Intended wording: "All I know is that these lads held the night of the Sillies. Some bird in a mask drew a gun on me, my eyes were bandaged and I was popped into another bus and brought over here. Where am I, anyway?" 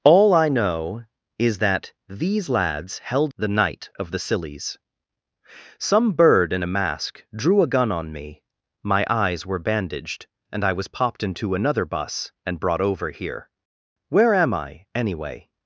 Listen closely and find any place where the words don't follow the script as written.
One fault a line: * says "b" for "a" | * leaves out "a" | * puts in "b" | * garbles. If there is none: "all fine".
all fine